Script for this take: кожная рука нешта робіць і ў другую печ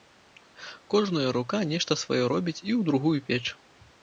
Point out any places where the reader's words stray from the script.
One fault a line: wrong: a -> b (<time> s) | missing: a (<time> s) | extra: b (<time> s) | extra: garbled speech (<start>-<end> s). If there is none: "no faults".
extra: сваё (2.0 s)